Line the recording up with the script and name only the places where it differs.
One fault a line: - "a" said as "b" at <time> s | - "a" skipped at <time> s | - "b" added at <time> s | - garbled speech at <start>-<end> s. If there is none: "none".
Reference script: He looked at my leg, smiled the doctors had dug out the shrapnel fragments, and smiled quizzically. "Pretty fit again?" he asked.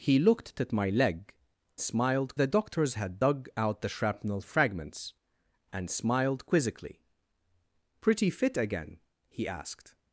none